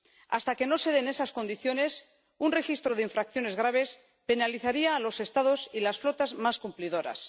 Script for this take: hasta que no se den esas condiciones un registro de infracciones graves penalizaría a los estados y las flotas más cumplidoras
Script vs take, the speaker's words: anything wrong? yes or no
no